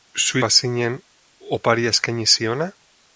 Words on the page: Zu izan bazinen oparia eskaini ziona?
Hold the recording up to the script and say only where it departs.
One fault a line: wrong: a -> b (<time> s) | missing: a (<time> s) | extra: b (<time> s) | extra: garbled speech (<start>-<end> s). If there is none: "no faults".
missing: izan (0.4 s)